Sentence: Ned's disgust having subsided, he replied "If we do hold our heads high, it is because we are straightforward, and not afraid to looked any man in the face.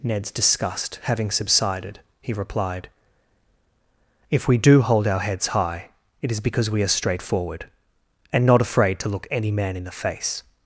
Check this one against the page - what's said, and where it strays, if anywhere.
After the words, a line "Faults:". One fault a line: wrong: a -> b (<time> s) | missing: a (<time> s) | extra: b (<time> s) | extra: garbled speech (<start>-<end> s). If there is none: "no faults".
Ned's disgust having subsided, he replied "If we do hold our heads high, it is because we are straightforward, and not afraid to look any man in the face.
Faults:
wrong: looked -> look (9.1 s)